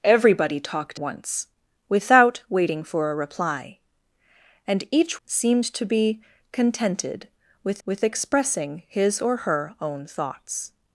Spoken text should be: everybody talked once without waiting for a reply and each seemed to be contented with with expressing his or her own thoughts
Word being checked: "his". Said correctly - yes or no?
yes